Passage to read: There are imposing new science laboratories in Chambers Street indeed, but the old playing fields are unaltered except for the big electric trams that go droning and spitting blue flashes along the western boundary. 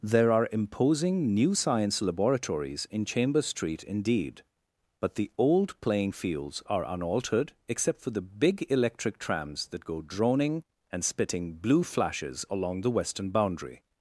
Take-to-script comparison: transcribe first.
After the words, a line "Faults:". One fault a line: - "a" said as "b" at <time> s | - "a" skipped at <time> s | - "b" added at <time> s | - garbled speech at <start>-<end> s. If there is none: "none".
There are imposing new science laboratories in Chambers Street indeed, but the old playing fields are unaltered except for the big electric trams that go droning and spitting blue flashes along the western boundary.
Faults:
none